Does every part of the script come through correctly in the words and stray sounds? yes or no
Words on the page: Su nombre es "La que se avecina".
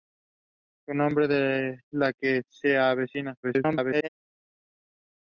no